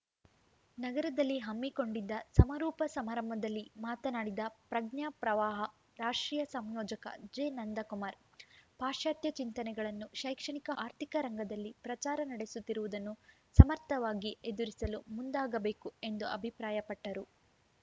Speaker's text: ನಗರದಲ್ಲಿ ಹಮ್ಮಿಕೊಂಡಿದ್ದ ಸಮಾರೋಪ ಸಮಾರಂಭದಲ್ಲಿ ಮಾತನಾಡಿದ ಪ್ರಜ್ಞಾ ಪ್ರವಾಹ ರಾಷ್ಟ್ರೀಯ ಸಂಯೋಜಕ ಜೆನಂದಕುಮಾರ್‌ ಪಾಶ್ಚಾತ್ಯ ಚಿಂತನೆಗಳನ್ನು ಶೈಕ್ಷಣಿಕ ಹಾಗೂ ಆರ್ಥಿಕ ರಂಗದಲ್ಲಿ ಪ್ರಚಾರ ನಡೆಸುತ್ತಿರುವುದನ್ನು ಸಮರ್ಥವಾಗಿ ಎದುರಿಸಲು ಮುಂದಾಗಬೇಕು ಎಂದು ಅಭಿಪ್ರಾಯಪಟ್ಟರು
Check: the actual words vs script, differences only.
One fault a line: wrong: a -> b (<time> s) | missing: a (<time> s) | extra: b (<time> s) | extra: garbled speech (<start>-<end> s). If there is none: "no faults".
missing: ಹಾಗೂ (10.7 s)